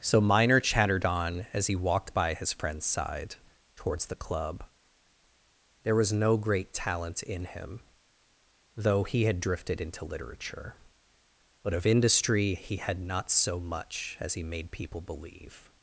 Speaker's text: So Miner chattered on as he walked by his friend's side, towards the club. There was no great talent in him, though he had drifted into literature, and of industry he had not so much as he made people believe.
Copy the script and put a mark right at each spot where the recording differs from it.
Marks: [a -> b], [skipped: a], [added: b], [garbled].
So Miner chattered on as he walked by his friend's side, towards the club. There was no great talent in him, though he had drifted into literature, [and -> but] of industry he had not so much as he made people believe.